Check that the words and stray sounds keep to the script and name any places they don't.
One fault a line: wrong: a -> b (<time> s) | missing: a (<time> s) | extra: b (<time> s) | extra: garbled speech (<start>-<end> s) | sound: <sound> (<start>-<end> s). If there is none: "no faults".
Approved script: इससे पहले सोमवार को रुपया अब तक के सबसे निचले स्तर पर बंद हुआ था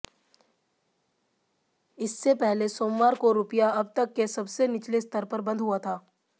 no faults